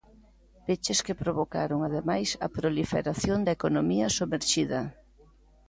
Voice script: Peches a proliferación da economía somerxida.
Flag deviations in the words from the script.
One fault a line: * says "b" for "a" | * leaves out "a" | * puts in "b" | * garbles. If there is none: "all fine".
* puts in "que provocaron ademais"